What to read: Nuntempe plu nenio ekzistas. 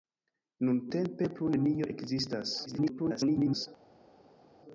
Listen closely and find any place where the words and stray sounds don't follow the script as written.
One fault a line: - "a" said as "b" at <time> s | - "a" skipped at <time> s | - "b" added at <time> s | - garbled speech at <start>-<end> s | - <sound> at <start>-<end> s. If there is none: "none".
- garbled speech at 2.7-3.7 s